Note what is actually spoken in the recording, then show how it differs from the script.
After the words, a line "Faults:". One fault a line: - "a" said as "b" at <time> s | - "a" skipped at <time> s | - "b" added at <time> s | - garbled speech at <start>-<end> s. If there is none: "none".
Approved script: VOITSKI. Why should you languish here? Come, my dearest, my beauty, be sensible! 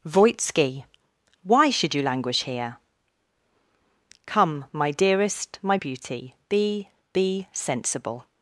VOITSKI. Why should you languish here? Come, my dearest, my beauty, be be sensible!
Faults:
- "be" added at 7.1 s